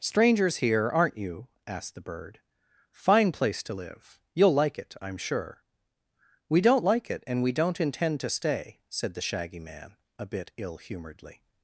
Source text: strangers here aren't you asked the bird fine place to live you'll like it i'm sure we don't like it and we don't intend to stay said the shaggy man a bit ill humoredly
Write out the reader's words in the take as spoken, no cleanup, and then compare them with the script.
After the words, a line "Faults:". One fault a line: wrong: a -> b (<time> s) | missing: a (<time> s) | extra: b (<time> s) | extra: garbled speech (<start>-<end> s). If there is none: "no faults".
strangers here aren't you asked the bird fine place to live you'll like it i'm sure we don't like it and we don't intend to stay said the shaggy man a bit ill humoredly
Faults:
no faults